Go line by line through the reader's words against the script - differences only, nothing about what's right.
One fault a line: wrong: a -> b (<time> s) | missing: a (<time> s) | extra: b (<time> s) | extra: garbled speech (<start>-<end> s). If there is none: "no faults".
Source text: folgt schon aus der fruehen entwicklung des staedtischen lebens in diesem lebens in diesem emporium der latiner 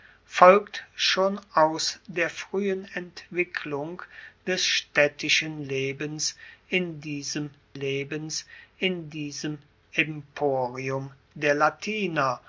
no faults